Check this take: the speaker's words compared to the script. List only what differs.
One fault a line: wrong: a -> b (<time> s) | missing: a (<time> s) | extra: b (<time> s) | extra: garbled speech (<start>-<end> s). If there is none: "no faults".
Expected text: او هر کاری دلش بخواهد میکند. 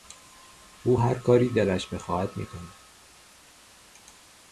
no faults